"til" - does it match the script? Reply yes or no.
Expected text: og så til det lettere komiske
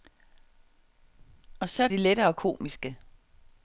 no